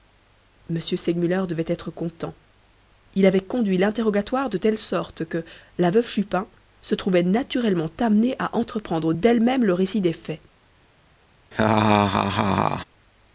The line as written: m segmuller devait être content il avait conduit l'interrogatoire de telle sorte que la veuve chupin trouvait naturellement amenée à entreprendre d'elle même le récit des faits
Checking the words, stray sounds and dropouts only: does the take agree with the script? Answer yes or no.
no